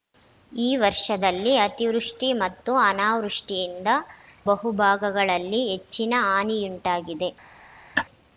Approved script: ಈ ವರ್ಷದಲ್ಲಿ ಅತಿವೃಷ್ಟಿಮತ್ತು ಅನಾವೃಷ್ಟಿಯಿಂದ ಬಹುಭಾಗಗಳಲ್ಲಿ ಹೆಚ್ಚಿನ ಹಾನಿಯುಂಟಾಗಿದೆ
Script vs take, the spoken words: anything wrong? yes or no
no